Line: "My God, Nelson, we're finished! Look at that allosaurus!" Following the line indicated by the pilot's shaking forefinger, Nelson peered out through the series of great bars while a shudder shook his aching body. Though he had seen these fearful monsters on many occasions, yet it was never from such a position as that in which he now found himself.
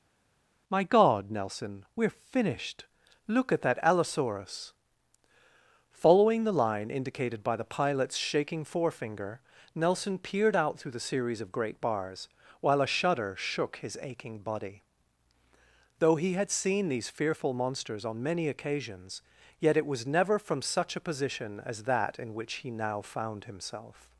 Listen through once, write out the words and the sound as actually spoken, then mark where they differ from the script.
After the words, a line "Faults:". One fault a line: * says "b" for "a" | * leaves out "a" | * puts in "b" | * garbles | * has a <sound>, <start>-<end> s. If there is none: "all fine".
"My God, Nelson, we're finished! Look at that allosaurus!" Following the line indicated by the pilot's shaking forefinger, Nelson peered out through the series of great bars while a shudder shook his aching body. Though he had seen these fearful monsters on many occasions, yet it was never from such a position as that in which he now found himself.
Faults:
all fine